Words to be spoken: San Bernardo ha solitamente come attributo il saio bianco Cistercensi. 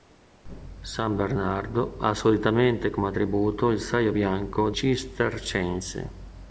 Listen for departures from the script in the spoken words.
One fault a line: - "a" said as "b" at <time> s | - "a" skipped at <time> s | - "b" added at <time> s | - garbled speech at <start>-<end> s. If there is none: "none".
none